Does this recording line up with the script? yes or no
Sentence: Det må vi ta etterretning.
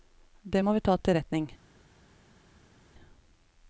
yes